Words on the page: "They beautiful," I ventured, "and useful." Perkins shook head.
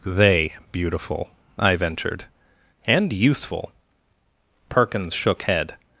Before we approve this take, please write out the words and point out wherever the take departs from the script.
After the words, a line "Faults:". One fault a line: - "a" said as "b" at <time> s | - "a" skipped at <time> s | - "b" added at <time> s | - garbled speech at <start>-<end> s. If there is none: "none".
"They beautiful," I ventured, "and useful." Perkins shook head.
Faults:
none